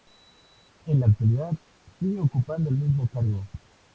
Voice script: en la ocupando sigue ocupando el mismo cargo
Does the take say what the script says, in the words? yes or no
no